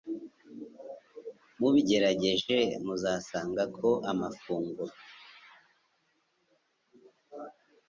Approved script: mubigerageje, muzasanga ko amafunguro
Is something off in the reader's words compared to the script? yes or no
no